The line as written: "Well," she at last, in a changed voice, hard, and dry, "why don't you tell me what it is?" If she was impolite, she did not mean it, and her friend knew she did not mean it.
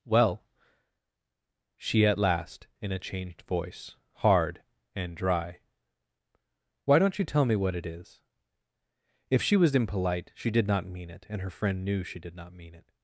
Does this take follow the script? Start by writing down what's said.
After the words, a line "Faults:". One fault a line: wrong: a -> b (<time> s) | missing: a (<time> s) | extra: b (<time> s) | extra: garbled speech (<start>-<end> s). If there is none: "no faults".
"Well," she at last, in a changed voice, hard, and dry, "why don't you tell me what it is?" If she was impolite, she did not mean it, and her friend knew she did not mean it.
Faults:
no faults